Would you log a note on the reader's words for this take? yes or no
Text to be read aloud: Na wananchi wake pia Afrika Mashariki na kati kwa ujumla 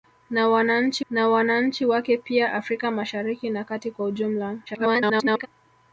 yes